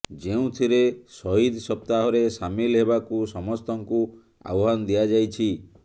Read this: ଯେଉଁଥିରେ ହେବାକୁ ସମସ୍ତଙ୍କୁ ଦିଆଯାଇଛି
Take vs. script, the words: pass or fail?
fail